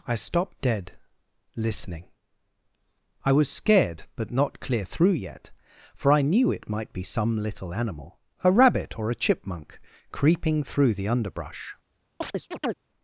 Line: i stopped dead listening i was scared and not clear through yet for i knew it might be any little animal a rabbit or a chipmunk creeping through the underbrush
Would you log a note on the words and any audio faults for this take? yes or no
yes